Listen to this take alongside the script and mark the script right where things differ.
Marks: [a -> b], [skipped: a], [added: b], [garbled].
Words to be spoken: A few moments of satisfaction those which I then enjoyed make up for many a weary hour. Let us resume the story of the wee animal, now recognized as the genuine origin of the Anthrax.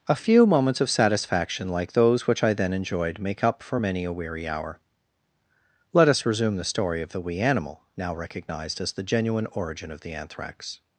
A few moments of satisfaction [added: like] those which I then enjoyed make up for many a weary hour. Let us resume the story of the wee animal, now recognized as the genuine origin of the Anthrax.